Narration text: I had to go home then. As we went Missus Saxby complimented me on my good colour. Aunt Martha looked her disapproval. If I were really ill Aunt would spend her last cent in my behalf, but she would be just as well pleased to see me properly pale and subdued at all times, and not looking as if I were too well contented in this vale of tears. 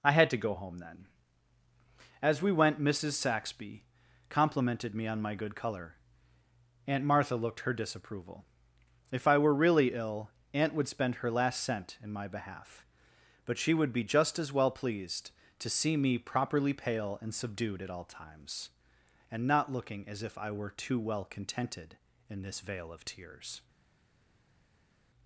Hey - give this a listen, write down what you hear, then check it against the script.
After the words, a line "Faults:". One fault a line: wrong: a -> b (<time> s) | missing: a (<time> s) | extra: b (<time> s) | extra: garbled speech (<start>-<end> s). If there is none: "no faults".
I had to go home then. As we went Missus Saxby complimented me on my good colour. Aunt Martha looked her disapproval. If I were really ill Aunt would spend her last cent in my behalf, but she would be just as well pleased to see me properly pale and subdued at all times, and not looking as if I were too well contented in this vale of tears.
Faults:
no faults